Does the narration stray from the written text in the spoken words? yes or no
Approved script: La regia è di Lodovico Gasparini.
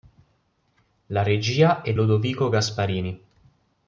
yes